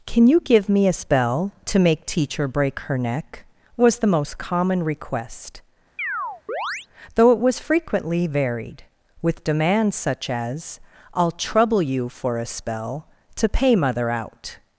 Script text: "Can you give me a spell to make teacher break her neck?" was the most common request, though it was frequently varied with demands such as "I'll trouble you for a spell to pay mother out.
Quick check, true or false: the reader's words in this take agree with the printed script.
true